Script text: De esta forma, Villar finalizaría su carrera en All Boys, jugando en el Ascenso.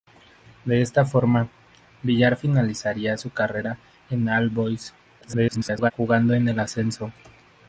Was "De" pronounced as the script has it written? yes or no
yes